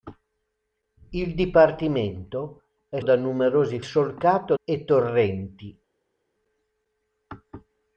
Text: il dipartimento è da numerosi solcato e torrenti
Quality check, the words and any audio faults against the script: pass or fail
pass